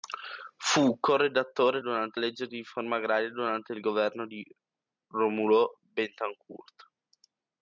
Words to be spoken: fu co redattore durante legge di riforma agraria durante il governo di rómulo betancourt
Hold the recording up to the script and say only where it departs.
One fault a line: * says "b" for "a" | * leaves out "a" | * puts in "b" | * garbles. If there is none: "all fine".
all fine